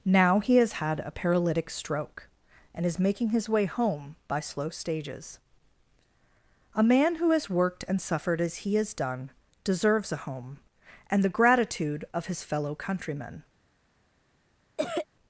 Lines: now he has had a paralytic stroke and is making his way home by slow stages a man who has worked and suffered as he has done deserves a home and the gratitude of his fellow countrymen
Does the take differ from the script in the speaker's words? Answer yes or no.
no